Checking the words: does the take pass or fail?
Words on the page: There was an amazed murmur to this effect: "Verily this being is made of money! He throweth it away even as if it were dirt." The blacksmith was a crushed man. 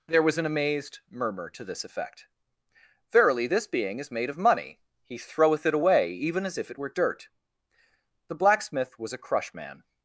fail